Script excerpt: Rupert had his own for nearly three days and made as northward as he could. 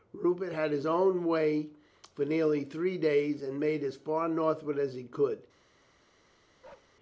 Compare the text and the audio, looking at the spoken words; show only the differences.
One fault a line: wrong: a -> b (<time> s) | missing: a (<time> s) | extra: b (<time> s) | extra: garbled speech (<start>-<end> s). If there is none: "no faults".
extra: way (1.2 s)
extra: far (3.9 s)